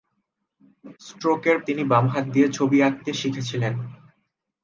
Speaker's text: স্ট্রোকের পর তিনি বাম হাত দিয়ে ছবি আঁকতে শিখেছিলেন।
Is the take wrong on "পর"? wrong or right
wrong